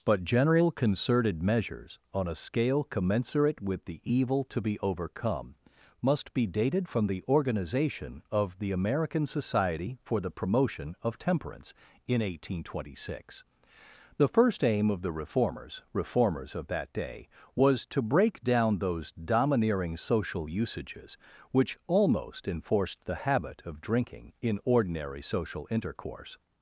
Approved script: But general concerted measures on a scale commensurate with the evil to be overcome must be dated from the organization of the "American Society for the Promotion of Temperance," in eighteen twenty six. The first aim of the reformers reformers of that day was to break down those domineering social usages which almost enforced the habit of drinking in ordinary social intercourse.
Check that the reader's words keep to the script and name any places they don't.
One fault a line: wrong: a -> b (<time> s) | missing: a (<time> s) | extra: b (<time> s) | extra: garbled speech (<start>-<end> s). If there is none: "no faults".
no faults